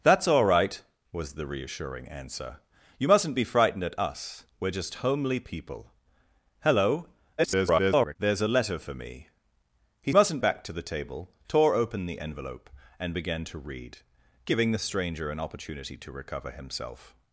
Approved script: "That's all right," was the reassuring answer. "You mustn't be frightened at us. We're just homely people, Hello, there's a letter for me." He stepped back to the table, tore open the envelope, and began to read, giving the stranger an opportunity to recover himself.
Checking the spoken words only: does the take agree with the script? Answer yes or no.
no